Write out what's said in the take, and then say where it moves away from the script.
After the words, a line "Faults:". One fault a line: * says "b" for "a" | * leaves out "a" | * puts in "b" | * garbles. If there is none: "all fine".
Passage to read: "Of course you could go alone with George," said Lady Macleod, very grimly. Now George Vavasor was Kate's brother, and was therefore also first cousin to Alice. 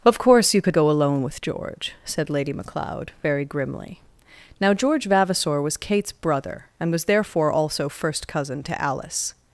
"Of course you could go alone with George," said Lady Macleod, very grimly. Now George Vavasor was Kate's brother, and was therefore also first cousin to Alice.
Faults:
all fine